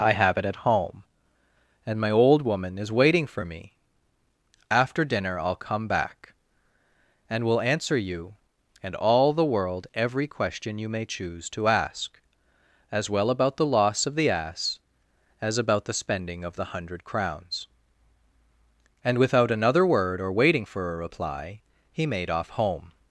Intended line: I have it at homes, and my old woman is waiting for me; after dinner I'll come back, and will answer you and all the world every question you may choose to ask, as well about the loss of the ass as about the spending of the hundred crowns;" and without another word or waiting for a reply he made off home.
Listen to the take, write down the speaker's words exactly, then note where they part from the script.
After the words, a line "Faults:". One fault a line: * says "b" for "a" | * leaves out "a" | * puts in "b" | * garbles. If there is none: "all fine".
I have it at home, and my old woman is waiting for me; after dinner I'll come back, and will answer you and all the world every question you may choose to ask, as well about the loss of the ass as about the spending of the hundred crowns;" and without another word or waiting for a reply he made off home.
Faults:
* says "home" for "homes"